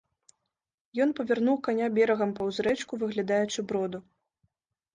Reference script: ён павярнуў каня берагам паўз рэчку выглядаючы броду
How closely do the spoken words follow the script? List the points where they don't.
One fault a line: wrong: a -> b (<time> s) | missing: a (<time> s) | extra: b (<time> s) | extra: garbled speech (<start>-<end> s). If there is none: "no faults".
no faults